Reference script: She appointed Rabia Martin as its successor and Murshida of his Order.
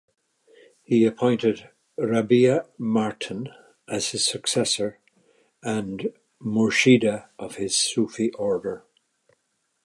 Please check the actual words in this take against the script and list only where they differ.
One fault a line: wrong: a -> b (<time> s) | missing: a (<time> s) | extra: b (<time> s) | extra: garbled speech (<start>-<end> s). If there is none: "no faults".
wrong: She -> He (0.8 s)
wrong: its -> his (4.1 s)
extra: Sufi (7.7 s)